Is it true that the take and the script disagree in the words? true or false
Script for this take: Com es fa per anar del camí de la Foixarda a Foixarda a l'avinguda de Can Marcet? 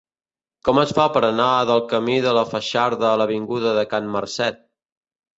true